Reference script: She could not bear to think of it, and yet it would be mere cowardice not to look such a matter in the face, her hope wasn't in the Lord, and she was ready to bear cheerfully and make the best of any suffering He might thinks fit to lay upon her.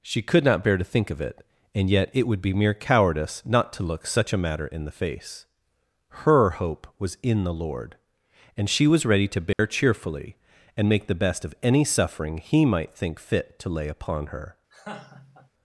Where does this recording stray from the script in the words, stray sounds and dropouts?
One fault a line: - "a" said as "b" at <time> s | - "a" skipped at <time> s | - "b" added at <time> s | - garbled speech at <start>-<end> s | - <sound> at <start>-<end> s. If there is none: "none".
- "wasn't" said as "was" at 7.0 s
- dropout at 9.5-9.6 s
- "thinks" said as "think" at 12.9 s
- laugh at 14.7-15.5 s